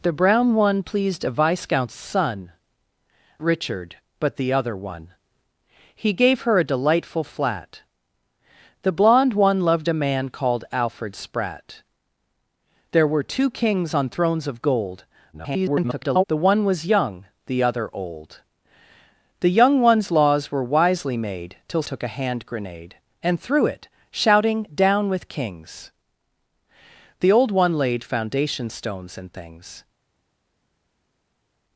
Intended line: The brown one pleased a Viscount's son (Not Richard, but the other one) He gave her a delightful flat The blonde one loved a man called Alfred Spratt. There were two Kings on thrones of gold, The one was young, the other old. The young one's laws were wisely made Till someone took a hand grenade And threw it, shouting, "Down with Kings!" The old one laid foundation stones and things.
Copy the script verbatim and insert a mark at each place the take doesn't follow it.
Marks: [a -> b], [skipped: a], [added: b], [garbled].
The brown one pleased a Viscount's son [skipped: (Not] Richard, but the other one) He gave her a delightful flat The blonde one loved a man called Alfred Spratt. There were two Kings on thrones of gold, [garbled] The one was young, the other old. The young one's laws were wisely made Till [skipped: someone] took a hand grenade And threw it, shouting, "Down with Kings!" The old one laid foundation stones and things.